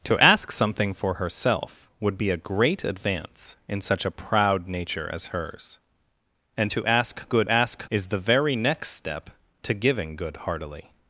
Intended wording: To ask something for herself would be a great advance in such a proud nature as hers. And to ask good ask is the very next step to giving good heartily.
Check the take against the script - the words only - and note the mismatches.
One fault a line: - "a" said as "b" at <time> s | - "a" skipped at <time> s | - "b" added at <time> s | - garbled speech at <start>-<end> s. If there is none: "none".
none